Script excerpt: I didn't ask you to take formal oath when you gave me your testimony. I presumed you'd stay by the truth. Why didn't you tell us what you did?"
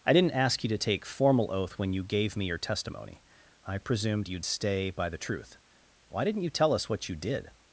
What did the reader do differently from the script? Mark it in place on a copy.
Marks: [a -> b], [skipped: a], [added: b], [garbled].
I didn't ask you to take formal oath when you gave me your testimony. I presumed you'd stay by the truth. Why didn't you tell us what you did?"